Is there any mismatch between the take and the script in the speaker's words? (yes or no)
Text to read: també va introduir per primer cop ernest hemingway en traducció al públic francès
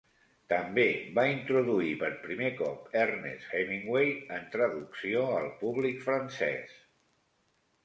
no